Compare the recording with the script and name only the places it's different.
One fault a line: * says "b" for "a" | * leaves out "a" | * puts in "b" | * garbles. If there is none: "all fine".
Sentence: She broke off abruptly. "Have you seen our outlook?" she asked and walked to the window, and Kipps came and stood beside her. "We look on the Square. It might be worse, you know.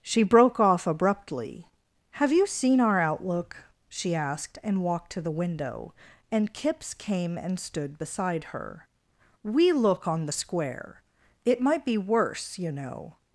all fine